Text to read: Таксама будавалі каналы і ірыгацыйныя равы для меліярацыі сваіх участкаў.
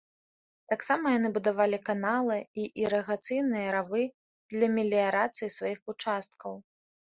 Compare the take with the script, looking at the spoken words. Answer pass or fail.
fail